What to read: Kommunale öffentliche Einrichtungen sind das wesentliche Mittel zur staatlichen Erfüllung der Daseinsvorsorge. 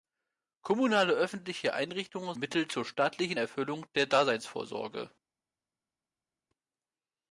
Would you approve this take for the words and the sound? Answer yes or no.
no